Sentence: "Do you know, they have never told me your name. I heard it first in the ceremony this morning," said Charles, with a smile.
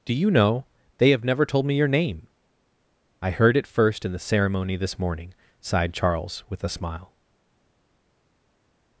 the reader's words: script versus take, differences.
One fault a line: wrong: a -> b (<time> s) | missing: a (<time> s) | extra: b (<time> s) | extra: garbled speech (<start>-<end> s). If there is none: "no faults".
wrong: said -> sighed (5.6 s)